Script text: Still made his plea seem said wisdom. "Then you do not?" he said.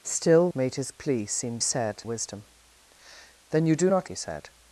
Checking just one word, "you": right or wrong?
right